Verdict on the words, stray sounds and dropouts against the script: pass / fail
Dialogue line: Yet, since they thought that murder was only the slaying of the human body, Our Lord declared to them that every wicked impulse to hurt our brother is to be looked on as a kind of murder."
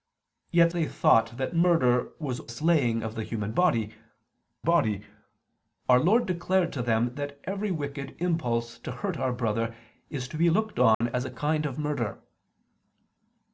fail